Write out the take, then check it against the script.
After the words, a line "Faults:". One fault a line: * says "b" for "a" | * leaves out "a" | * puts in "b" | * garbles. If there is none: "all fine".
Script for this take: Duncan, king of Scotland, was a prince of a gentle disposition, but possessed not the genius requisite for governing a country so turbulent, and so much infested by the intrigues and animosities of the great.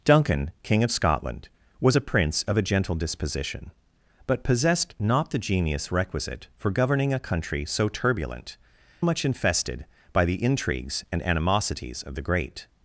Duncan, king of Scotland, was a prince of a gentle disposition, but possessed not the genius requisite for governing a country so turbulent, much infested by the intrigues and animosities of the great.
Faults:
* leaves out "and so"